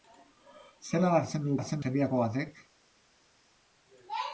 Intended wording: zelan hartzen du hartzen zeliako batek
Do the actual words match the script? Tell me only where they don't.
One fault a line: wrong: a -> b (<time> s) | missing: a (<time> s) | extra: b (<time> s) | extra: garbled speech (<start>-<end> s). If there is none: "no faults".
no faults